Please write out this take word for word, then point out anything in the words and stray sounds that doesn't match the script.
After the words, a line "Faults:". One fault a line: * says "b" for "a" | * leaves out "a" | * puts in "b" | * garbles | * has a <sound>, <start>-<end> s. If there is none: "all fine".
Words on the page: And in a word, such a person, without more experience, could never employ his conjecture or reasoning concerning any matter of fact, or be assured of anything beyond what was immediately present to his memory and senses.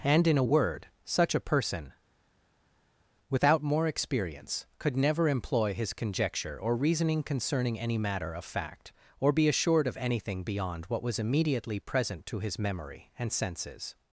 And in a word, such a person, without more experience, could never employ his conjecture or reasoning concerning any matter of fact, or be assured of anything beyond what was immediately present to his memory and senses.
Faults:
all fine